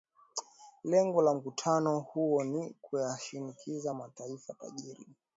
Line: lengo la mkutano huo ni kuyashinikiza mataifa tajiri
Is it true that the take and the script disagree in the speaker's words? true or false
false